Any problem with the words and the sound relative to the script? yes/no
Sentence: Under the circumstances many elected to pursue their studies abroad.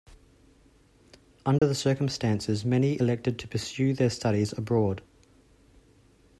yes